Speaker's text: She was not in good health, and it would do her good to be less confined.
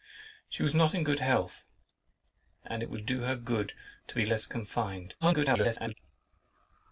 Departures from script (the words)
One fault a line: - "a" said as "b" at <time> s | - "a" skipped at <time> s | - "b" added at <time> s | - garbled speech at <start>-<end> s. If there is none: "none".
- garbled speech at 5.2-5.9 s